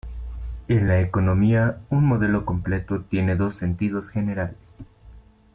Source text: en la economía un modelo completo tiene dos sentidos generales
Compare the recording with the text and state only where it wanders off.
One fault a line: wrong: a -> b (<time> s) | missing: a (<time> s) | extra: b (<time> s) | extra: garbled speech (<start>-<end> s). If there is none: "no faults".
no faults